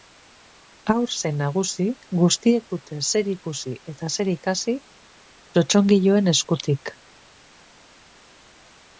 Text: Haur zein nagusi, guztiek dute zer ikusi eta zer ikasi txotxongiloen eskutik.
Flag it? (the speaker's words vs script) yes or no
no